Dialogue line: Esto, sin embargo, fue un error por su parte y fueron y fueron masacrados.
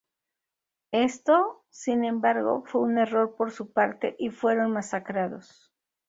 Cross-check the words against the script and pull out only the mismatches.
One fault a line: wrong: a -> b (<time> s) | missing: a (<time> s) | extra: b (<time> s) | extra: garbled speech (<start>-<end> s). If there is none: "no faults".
missing: y fueron (4.7 s)